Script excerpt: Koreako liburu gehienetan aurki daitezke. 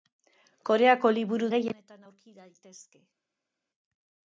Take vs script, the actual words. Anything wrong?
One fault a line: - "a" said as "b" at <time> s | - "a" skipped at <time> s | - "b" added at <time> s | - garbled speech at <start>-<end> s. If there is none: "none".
none